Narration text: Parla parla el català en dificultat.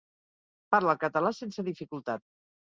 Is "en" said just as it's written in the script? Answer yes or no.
no